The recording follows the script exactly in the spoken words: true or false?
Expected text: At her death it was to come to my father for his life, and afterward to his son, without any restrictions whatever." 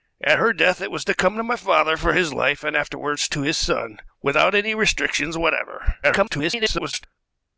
false